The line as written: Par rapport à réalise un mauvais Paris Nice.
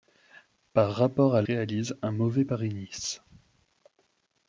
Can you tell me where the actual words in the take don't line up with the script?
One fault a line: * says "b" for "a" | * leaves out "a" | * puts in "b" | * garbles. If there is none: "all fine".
all fine